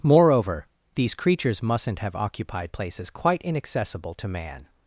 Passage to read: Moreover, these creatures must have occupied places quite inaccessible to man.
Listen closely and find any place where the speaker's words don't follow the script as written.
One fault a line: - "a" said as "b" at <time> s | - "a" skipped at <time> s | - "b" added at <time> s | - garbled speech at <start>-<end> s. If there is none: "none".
- "must" said as "mustn't" at 1.6 s